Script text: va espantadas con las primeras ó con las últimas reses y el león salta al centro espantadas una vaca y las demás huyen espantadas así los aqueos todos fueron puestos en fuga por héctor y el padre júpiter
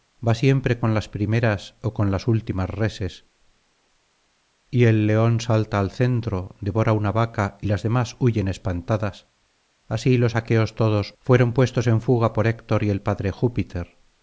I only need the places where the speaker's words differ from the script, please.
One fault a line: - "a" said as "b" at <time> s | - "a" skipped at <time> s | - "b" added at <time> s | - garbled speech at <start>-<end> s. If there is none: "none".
- "espantadas" said as "siempre" at 0.3 s
- "espantadas" said as "devora" at 6.6 s